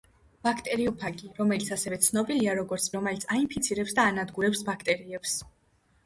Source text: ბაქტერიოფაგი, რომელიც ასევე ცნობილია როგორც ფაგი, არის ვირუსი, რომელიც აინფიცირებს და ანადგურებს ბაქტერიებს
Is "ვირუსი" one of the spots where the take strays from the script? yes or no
yes